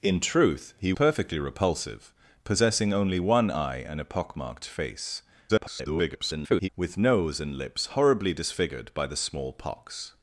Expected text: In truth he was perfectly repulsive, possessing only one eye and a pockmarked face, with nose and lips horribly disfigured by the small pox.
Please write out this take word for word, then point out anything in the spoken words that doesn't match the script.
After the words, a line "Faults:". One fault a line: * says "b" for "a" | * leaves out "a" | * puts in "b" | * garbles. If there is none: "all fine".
In truth he perfectly repulsive, possessing only one eye and a pockmarked face, [garbled] with nose and lips horribly disfigured by the small pox.
Faults:
* leaves out "was"
* garbles